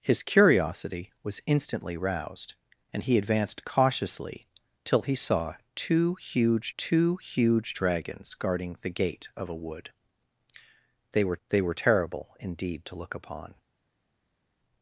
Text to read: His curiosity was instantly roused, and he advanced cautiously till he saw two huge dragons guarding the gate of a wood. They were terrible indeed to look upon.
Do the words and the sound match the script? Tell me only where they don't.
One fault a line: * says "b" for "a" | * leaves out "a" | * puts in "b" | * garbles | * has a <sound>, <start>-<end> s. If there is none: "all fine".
* puts in "two huge"
* puts in "they were"